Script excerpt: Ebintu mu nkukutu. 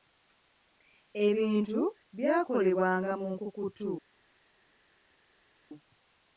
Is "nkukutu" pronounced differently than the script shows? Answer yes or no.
no